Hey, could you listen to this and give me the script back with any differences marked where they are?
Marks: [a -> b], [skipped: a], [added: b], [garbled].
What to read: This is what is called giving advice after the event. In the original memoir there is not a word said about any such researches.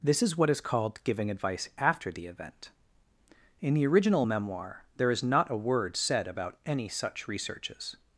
This is what is called giving advice after the event. In the original memoir there is not a word said about any such researches.